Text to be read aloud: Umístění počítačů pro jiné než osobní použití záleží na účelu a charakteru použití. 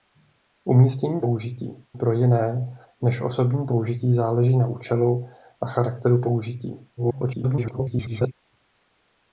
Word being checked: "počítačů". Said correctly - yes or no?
no